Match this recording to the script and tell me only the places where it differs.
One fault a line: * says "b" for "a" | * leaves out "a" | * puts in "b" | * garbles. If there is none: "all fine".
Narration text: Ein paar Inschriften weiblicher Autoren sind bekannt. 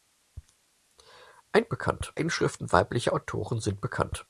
* says "bekannt" for "paar"